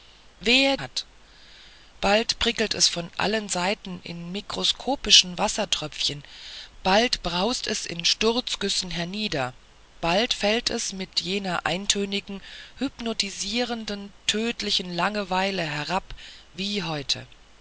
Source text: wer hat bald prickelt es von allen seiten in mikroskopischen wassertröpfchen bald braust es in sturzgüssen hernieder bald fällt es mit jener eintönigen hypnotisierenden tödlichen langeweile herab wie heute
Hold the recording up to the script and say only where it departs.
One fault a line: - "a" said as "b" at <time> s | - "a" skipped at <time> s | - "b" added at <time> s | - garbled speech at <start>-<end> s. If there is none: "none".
none